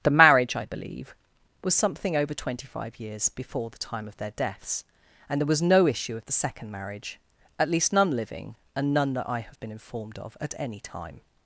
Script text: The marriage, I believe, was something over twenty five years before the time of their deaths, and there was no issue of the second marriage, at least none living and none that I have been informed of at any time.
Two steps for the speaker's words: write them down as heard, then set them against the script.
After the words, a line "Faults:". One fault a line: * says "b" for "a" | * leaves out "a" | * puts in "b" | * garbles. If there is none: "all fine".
The marriage, I believe, was something over twenty five years before the time of their deaths, and there was no issue of the second marriage, at least none living and none that I have been informed of at any time.
Faults:
all fine